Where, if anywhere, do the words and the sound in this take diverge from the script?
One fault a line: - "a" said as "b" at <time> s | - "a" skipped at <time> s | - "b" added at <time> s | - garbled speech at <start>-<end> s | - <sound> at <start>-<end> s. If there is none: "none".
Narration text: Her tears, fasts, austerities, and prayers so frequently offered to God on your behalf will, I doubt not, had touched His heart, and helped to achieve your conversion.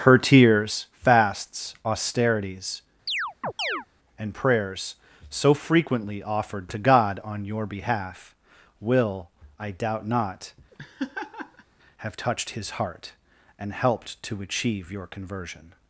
- chirp at 3.1-3.9 s
- laugh at 10.7-11.6 s
- "had" said as "have" at 12.0 s